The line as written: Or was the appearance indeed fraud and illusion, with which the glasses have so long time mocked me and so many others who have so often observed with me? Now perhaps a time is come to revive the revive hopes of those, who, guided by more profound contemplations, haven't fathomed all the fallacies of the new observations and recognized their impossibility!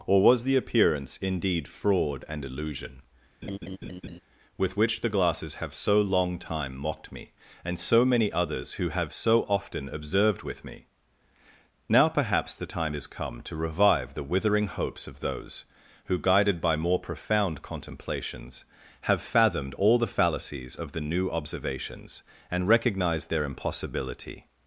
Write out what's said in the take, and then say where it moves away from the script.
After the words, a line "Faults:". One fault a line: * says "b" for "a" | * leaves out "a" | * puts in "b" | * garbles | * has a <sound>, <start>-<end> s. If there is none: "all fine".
Or was the appearance indeed fraud and illusion, with which the glasses have so long time mocked me and so many others who have so often observed with me? Now perhaps the time is come to revive the withering hopes of those, who, guided by more profound contemplations, have fathomed all the fallacies of the new observations and recognized their impossibility!
Faults:
* has a laugh, 3.4-4.2 s
* says "the" for "a"
* says "withering" for "revive"
* says "have" for "haven't"